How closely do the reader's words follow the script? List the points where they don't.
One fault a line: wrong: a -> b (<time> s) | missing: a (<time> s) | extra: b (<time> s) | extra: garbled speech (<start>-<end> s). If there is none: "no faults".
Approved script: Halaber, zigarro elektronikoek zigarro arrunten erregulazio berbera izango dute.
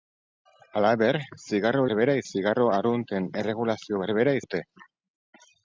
wrong: elektronikoek -> berbera (1.9 s)
missing: izango (4.4 s)